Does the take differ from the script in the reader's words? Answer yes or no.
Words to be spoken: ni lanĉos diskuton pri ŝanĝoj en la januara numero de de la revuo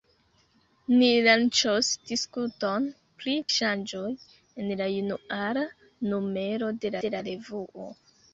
no